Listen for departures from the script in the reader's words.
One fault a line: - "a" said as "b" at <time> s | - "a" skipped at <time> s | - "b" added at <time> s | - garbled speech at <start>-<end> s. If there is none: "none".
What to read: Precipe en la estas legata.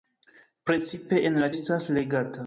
none